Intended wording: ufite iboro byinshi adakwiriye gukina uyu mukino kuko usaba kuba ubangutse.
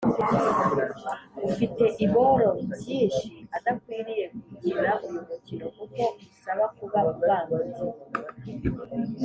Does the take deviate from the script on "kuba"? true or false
false